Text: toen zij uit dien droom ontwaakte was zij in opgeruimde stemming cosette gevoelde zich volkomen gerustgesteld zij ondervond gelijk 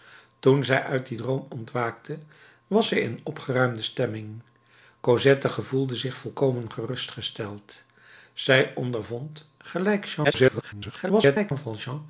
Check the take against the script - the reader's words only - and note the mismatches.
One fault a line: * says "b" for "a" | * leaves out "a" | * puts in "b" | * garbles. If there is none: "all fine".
* garbles